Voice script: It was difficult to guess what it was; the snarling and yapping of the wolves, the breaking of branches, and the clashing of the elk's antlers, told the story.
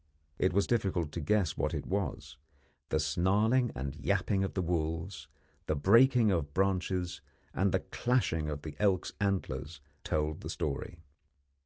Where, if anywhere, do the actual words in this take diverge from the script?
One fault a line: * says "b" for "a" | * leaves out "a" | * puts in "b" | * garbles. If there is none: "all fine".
all fine